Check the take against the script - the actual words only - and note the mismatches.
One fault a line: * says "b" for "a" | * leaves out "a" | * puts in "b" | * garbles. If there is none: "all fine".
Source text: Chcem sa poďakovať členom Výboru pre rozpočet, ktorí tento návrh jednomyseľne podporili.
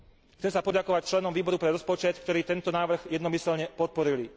all fine